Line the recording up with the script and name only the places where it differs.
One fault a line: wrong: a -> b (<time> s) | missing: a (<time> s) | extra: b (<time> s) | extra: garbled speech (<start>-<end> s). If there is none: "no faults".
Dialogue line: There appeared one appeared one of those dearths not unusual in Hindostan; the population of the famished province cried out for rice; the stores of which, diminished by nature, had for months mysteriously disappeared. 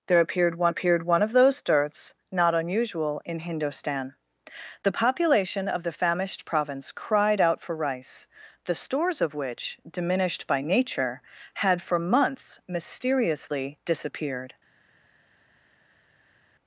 no faults